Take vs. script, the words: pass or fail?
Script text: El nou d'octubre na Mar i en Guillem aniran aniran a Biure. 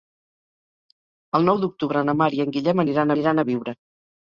pass